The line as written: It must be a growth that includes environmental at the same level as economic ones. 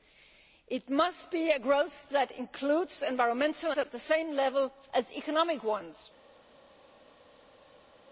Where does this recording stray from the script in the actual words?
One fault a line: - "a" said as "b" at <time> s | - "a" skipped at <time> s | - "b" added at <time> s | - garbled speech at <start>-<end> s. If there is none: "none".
none